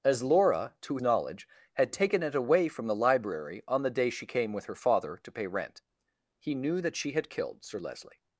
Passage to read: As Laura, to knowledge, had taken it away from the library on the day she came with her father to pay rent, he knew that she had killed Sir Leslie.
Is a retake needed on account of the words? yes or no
no